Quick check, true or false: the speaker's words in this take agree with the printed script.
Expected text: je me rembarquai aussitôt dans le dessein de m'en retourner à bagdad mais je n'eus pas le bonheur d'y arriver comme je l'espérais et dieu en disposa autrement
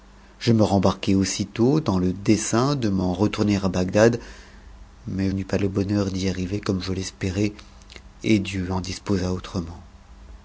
false